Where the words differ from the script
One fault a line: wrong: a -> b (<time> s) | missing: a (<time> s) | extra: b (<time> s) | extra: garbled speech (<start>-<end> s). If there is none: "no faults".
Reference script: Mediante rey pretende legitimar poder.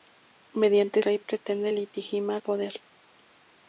no faults